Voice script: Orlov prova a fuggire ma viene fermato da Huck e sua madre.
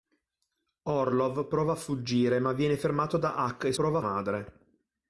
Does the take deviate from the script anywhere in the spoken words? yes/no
yes